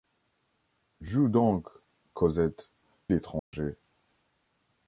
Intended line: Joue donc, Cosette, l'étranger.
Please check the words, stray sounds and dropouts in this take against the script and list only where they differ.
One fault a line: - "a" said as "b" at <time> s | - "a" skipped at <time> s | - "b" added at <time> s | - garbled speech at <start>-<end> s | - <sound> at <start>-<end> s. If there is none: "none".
- dropout at 3.4-3.5 s